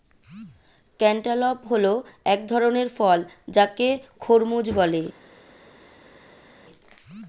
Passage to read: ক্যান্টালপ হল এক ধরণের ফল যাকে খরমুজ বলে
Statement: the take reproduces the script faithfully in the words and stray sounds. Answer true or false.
true